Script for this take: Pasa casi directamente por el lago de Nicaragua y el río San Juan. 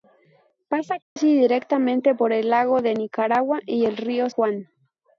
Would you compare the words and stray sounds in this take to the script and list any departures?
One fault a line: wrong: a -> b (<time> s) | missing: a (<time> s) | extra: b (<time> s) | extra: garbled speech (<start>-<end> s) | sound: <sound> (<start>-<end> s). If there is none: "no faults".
sound: dropout (1.0-1.2 s)
missing: San (4.3 s)